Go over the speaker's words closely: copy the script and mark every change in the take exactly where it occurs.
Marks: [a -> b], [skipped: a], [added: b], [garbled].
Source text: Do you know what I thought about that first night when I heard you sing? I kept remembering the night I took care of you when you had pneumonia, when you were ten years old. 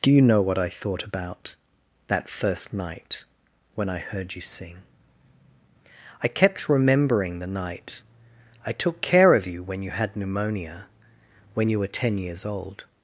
Do you know what I thought about that first night when I heard you sing? I kept remembering the night I took care of you when you had pneumonia, when you were ten years old.